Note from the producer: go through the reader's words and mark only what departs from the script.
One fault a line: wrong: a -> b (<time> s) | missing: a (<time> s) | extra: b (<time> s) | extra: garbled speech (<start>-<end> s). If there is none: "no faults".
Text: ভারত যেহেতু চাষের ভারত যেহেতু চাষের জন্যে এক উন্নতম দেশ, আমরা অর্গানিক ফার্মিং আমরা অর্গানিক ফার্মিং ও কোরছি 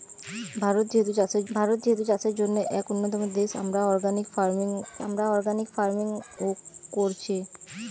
no faults